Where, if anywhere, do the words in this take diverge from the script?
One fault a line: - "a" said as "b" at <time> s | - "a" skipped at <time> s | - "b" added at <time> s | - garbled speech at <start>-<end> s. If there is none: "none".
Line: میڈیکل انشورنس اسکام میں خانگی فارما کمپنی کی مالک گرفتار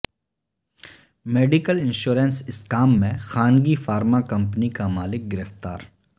- "کی" said as "کا" at 4.7 s